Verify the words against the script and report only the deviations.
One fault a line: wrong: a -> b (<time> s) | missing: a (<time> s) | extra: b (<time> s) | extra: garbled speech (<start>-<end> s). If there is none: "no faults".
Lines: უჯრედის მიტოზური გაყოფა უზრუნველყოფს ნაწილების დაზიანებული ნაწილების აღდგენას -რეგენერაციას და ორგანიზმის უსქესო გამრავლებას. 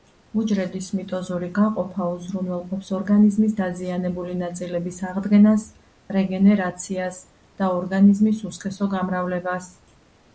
wrong: ნაწილების -> ორგანიზმის (3.0 s)